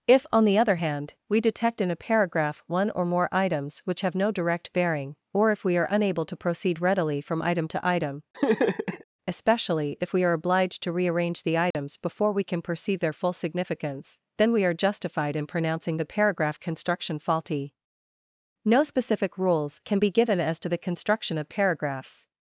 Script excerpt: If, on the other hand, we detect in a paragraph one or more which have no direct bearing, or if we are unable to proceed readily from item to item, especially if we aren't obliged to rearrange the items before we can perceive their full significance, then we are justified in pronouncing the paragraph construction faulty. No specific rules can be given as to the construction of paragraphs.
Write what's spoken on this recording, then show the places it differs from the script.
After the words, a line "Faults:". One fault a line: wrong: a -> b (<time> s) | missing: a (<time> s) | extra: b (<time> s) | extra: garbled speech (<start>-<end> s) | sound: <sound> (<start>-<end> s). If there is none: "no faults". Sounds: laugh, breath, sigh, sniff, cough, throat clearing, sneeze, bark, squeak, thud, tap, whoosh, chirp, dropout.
If, on the other hand, we detect in a paragraph one or more items which have no direct bearing, or if we are unable to proceed readily from item to item, especially if we are obliged to rearrange the items before we can perceive their full significance, then we are justified in pronouncing the paragraph construction faulty. No specific rules can be given as to the construction of paragraphs.
Faults:
extra: items (3.3 s)
sound: laugh (8.3-9.0 s)
wrong: aren't -> are (10.2 s)
sound: dropout (11.7-11.7 s)